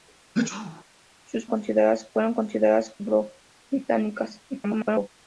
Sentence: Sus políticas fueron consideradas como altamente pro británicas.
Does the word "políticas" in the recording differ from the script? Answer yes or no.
yes